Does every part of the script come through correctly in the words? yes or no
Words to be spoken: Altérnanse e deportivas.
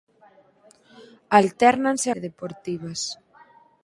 yes